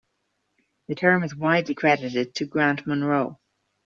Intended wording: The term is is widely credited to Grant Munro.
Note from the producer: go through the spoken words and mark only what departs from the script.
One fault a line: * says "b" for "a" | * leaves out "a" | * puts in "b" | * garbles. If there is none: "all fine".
* leaves out "is"